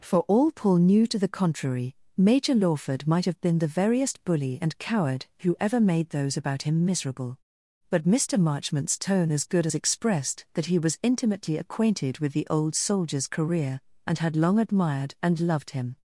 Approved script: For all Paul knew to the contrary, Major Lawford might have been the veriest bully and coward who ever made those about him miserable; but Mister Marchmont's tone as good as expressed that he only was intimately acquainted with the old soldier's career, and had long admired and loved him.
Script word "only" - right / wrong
wrong